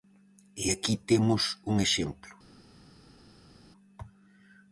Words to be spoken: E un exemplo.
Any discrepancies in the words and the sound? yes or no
yes